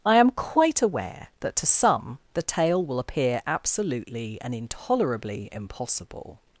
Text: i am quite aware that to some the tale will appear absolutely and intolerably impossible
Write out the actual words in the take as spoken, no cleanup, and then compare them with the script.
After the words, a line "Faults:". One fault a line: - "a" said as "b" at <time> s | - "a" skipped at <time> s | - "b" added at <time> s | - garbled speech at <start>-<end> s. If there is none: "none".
i am quite aware that to some the tale will appear absolutely and intolerably impossible
Faults:
none